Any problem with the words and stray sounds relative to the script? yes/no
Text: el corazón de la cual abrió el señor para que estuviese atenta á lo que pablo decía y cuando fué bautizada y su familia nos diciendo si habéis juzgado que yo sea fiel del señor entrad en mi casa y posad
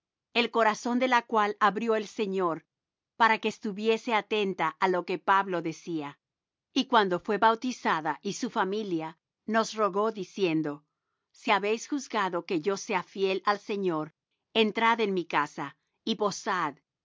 yes